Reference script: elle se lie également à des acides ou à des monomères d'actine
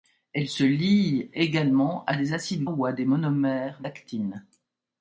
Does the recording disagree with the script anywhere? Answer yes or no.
no